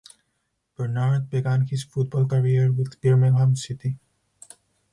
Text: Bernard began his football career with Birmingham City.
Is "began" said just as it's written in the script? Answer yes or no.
yes